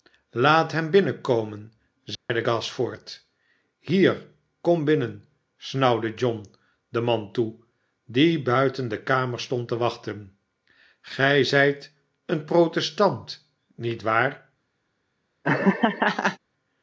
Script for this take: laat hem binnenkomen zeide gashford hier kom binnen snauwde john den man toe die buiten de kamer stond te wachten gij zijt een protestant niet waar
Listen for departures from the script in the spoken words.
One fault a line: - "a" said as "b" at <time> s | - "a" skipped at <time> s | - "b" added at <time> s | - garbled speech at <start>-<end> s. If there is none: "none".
none